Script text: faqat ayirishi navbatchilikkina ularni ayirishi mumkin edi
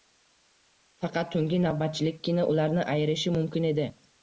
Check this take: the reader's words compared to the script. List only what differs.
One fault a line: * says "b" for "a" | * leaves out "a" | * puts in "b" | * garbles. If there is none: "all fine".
* says "tungi" for "ayirishi"